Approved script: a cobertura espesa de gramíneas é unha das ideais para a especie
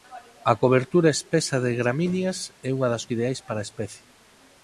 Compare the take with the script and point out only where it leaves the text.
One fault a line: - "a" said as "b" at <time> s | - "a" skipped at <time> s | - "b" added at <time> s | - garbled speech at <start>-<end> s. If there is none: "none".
none